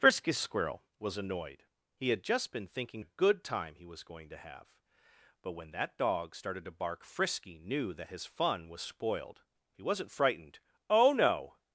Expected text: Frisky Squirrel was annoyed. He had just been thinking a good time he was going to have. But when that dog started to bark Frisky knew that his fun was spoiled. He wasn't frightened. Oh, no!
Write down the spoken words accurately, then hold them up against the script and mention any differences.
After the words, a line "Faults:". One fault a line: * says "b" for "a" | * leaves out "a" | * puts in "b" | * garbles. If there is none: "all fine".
Frisky Squirrel was annoyed. He had just been thinking a good time he was going to have. But when that dog started to bark Frisky knew that his fun was spoiled. He wasn't frightened. Oh, no!
Faults:
all fine